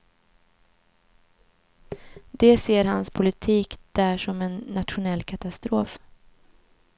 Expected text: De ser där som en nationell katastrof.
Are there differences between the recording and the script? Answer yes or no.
yes